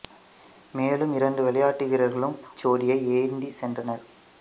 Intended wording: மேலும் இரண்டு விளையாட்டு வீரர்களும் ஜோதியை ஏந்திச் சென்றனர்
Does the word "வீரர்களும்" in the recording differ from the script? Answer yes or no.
no